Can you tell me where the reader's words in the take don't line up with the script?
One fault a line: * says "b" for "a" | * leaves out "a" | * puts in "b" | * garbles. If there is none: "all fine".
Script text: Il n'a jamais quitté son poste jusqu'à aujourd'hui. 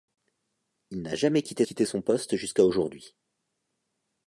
* puts in "quitté"